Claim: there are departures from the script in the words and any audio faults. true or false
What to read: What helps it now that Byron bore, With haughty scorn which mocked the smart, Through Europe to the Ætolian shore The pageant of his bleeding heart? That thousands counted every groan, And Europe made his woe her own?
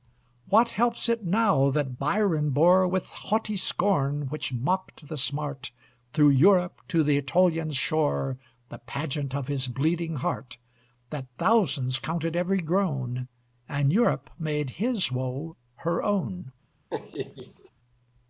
true